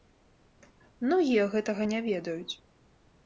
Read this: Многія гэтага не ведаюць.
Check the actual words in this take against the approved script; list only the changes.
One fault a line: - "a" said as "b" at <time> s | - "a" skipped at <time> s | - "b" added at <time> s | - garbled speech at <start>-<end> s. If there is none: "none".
none